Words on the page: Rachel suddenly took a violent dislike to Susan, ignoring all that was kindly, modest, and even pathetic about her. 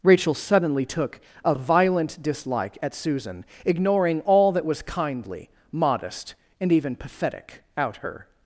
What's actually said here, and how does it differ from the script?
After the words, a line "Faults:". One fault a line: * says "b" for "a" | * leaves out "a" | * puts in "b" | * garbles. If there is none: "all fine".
Rachel suddenly took a violent dislike at Susan, ignoring all that was kindly, modest, and even pathetic out her.
Faults:
* says "at" for "to"
* says "out" for "about"